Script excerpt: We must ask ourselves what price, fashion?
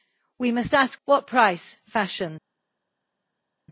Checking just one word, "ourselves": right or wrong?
wrong